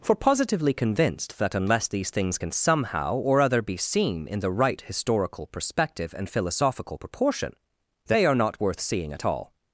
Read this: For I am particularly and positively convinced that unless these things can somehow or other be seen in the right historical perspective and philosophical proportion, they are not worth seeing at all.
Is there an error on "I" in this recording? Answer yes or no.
yes